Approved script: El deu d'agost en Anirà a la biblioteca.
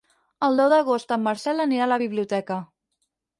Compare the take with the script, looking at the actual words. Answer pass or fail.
fail